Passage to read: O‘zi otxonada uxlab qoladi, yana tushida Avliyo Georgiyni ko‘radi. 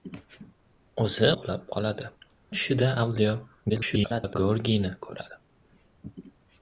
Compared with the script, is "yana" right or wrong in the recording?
wrong